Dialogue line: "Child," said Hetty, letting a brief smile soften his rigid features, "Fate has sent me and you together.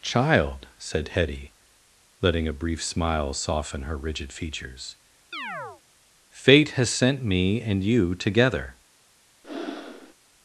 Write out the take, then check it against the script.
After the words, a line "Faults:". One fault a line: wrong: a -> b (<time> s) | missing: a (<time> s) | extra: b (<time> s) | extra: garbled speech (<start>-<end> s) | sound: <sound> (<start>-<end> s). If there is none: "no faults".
"Child," said Hetty, letting a brief smile soften her rigid features, "Fate has sent me and you together.
Faults:
wrong: his -> her (3.8 s)
sound: chirp (5.3-5.8 s)
sound: breath (9.4-10.1 s)